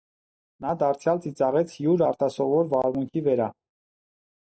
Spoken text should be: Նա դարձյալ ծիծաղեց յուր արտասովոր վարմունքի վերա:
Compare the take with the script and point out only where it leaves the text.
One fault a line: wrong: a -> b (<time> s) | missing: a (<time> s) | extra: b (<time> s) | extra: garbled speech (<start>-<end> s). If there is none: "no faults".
no faults